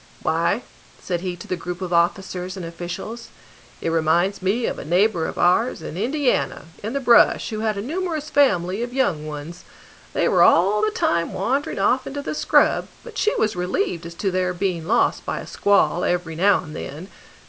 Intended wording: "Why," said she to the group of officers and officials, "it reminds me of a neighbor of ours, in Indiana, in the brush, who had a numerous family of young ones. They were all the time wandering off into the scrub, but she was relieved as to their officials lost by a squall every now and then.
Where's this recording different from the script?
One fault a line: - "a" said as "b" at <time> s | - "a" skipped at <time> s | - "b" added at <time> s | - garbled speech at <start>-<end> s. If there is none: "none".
- "she" said as "he" at 1.2 s
- "officials" said as "being" at 14.5 s